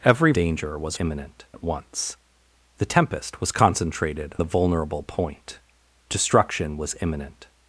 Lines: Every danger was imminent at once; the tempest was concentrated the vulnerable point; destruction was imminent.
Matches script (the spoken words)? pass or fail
pass